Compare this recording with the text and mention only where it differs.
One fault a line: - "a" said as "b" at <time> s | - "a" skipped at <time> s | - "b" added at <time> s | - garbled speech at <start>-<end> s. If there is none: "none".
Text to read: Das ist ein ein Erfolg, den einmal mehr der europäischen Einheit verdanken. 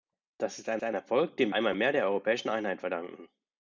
none